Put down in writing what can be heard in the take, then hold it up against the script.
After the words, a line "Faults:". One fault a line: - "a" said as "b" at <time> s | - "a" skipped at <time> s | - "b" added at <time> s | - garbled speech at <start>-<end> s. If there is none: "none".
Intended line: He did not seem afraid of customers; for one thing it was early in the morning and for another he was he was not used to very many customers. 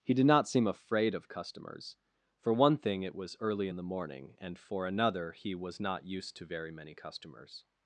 He did not seem afraid of customers; for one thing it was early in the morning and for another he was not used to very many customers.
Faults:
- "he was" skipped at 5.8 s